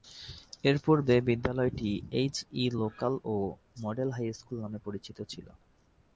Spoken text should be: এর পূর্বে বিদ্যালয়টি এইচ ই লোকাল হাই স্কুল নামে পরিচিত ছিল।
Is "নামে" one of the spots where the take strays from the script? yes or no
no